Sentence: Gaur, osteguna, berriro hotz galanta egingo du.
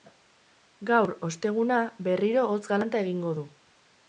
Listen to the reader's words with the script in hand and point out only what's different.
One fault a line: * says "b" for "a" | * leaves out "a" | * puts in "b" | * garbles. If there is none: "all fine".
all fine